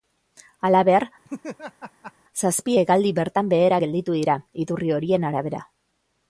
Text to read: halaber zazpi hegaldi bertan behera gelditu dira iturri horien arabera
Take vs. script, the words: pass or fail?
pass